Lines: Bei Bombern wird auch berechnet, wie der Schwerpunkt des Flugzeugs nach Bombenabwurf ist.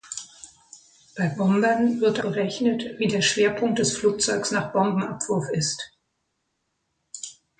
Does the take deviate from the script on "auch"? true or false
true